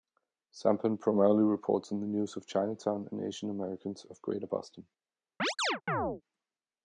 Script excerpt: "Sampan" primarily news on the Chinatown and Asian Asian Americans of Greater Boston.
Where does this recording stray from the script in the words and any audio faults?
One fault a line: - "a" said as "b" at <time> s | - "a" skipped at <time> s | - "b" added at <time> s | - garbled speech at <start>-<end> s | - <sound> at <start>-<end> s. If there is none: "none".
- "news" said as "reports" at 1.4 s
- "news of" added at 2.1 s
- "Asian" skipped at 3.5 s
- chirp at 5.4-6.2 s